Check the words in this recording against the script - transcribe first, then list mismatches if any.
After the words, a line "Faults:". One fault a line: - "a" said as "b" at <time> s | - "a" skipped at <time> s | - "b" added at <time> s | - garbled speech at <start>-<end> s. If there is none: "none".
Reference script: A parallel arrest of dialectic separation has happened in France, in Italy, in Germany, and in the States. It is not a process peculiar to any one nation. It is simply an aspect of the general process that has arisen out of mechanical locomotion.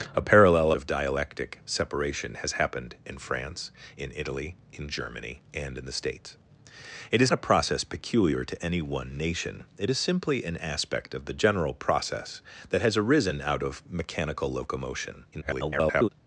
A parallel of dialectic separation has happened in France, in Italy, in Germany, and in the States. It is a process peculiar to any one nation. It is simply an aspect of the general process that has arisen out of mechanical locomotion. [garbled]
Faults:
- "arrest" skipped at 0.7 s
- "not" skipped at 7.3 s
- garbled speech at 15.3-16.1 s